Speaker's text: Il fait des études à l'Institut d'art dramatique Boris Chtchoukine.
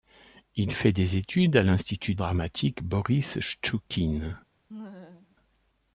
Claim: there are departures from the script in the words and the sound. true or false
true